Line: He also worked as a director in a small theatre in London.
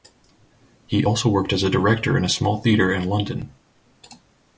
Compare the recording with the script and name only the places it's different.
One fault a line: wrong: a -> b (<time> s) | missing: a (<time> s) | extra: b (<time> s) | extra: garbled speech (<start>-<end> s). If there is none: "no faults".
no faults